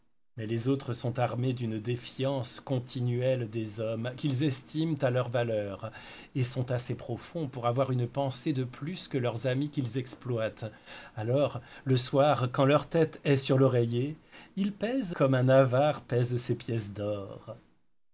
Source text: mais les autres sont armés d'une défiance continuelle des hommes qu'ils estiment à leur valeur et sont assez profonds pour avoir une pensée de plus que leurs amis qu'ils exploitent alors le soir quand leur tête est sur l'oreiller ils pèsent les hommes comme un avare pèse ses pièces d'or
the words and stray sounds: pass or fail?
fail